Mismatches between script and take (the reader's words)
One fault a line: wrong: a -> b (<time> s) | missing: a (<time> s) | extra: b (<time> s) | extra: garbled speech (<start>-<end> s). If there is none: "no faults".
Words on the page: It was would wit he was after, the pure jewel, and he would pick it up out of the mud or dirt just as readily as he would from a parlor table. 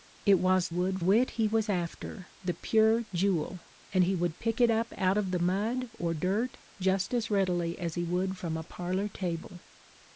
no faults